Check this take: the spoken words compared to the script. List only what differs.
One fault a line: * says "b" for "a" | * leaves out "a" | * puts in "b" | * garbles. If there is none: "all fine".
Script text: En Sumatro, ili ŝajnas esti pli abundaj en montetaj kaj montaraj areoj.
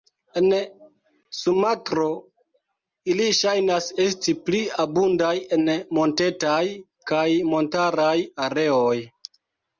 all fine